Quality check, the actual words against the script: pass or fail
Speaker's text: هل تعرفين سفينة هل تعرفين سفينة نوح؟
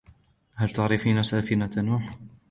fail